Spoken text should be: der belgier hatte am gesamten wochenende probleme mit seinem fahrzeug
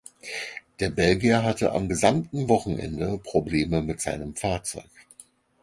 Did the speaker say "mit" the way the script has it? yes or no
yes